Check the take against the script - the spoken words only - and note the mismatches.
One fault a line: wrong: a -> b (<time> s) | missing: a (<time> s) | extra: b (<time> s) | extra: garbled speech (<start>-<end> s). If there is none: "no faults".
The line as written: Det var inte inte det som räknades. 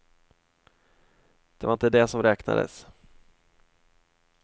missing: inte (1.9 s)